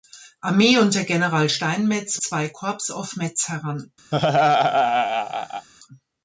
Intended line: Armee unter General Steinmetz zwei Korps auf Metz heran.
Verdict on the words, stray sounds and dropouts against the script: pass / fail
fail